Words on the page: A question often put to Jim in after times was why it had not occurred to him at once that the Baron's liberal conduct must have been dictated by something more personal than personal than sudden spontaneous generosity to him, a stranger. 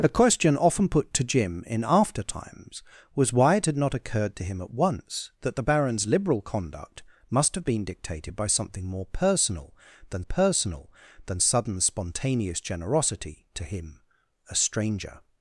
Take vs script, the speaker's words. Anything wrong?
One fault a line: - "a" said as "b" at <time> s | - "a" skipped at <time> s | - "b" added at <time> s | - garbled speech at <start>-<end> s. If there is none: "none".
none